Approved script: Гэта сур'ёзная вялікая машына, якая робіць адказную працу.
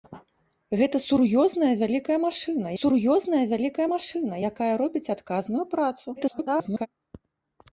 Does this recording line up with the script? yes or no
no